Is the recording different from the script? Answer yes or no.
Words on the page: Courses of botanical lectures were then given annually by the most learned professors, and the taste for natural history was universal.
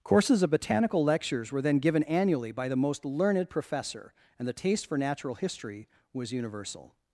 yes